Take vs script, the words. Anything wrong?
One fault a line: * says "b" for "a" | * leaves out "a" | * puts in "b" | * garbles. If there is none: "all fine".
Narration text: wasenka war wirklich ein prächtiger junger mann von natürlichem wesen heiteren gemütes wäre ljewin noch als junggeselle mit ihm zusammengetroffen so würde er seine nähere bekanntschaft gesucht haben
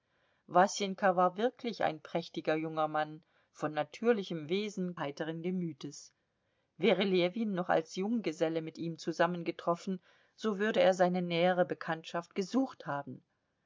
all fine